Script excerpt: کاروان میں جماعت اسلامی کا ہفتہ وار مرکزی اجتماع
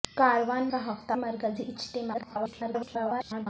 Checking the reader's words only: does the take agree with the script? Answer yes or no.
no